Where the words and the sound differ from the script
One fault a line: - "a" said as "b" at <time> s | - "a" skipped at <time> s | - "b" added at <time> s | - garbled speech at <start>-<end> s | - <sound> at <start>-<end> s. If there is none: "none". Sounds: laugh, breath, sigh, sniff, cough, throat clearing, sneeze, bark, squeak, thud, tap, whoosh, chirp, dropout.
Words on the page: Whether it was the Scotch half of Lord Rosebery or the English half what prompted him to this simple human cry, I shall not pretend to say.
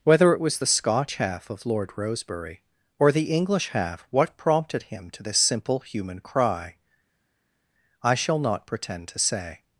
none